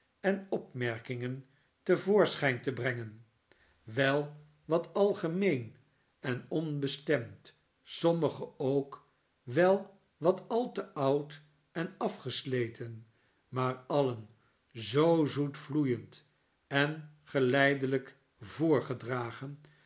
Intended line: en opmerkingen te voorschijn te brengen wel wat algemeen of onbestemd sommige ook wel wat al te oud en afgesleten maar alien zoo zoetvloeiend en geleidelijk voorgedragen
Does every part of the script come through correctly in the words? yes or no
no